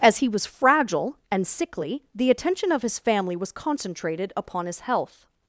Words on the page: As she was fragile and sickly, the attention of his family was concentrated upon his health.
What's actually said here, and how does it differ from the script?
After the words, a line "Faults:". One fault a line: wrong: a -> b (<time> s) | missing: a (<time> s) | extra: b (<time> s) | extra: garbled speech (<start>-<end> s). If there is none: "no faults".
As he was fragile and sickly, the attention of his family was concentrated upon his health.
Faults:
wrong: she -> he (0.2 s)